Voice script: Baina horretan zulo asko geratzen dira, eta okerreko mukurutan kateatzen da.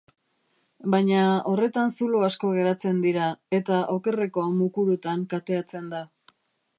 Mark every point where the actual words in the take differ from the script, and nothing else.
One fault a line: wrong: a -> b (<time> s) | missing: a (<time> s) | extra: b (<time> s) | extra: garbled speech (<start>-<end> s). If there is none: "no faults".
no faults